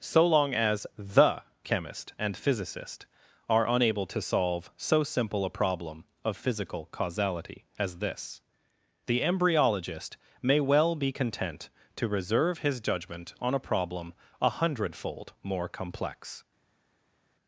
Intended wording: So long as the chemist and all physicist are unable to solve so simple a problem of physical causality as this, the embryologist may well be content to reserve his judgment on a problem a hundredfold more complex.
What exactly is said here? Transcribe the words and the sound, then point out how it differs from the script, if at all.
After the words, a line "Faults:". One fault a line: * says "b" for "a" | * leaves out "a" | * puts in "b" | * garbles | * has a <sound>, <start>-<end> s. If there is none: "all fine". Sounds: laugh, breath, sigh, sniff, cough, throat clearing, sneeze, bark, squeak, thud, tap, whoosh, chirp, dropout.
So long as the chemist and physicist are unable to solve so simple a problem of physical causality as this, the embryologist may well be content to reserve his judgment on a problem a hundredfold more complex.
Faults:
* leaves out "all"